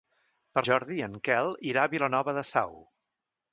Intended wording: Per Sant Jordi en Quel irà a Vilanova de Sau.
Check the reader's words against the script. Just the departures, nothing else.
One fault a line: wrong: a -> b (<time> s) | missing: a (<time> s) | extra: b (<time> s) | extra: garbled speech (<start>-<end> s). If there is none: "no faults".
missing: Sant (0.6 s)